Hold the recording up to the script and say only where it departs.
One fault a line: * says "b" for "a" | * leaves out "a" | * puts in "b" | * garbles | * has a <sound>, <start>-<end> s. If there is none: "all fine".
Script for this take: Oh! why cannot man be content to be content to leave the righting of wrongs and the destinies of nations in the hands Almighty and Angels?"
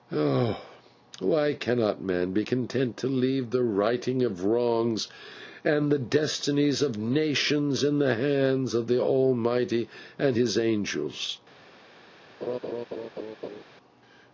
* leaves out "be content to"
* puts in "of the"
* puts in "His"
* has a laugh, 12.4-13.6 s